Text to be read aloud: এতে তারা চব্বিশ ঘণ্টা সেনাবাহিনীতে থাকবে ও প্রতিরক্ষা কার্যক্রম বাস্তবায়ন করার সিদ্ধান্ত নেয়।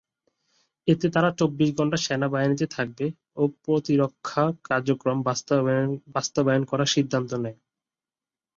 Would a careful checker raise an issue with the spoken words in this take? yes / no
no